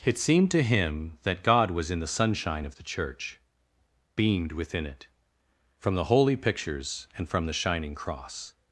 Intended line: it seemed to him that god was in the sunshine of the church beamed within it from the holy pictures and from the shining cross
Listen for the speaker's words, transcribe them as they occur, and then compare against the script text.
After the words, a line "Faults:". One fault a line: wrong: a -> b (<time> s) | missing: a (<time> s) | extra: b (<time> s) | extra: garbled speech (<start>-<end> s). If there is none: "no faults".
it seemed to him that god was in the sunshine of the church beamed within it from the holy pictures and from the shining cross
Faults:
no faults